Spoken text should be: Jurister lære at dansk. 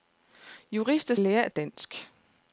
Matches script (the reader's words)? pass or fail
pass